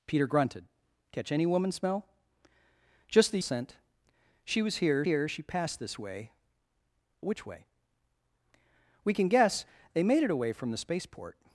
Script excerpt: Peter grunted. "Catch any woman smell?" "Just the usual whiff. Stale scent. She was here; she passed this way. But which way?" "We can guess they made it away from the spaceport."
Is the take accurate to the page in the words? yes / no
no